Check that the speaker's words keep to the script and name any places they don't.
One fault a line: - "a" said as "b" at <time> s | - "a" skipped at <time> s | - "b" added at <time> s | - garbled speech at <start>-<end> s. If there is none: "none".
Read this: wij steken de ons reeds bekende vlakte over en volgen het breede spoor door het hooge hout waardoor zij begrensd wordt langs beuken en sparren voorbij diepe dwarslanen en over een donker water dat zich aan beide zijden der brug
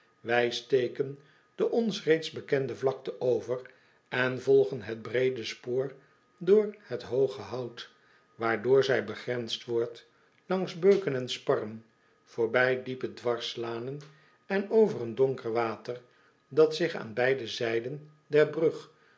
none